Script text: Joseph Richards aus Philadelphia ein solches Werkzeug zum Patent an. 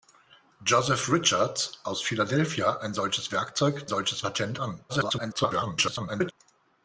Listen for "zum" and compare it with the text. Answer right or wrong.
wrong